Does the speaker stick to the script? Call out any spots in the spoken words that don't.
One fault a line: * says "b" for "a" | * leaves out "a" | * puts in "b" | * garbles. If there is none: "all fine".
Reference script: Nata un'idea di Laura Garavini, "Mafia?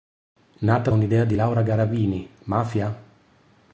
all fine